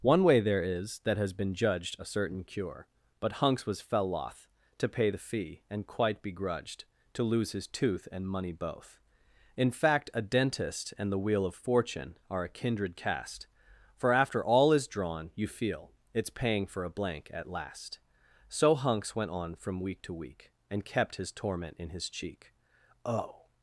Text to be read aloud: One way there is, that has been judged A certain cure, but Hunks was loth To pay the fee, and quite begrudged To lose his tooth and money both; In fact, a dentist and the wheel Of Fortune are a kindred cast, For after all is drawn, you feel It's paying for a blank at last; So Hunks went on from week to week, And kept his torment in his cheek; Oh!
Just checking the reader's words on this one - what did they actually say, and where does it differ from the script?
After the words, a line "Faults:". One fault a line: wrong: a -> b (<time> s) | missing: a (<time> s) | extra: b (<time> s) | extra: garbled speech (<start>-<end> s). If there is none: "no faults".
One way there is, that has been judged A certain cure, but Hunks was fell loth To pay the fee, and quite begrudged To lose his tooth and money both; In fact, a dentist and the wheel Of Fortune are a kindred cast, For after all is drawn, you feel It's paying for a blank at last; So Hunks went on from week to week, And kept his torment in his cheek; Oh!
Faults:
extra: fell (3.8 s)